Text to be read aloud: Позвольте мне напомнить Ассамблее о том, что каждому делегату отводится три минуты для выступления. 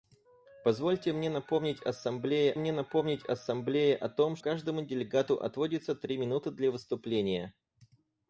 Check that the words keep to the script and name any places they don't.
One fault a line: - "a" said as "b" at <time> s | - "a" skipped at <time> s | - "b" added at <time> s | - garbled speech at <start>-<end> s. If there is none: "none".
- "мне напомнить Ассамблее" added at 2.6 s
- "что" skipped at 4.4 s